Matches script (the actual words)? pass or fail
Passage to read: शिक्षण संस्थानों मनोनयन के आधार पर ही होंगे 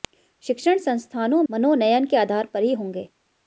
pass